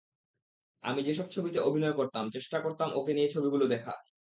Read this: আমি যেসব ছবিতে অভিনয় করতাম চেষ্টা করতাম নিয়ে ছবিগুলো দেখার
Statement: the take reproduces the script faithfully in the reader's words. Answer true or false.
false